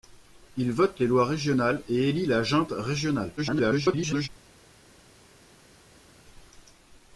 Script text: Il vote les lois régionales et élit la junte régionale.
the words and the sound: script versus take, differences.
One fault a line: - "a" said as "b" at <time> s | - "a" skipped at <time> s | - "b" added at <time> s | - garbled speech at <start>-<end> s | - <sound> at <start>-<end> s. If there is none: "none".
- garbled speech at 3.4-4.3 s